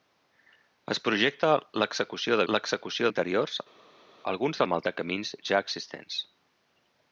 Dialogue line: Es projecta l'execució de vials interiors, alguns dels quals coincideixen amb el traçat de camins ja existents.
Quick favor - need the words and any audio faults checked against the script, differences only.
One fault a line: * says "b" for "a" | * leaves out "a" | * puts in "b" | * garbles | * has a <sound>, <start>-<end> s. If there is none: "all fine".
* says "l'execució" for "vials"
* leaves out "dels quals coincideixen"
* leaves out "traçat"